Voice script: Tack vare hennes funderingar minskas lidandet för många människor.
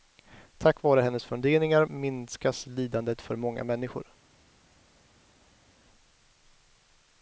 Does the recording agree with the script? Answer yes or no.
yes